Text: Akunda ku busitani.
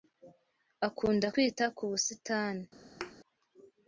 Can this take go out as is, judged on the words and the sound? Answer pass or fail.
fail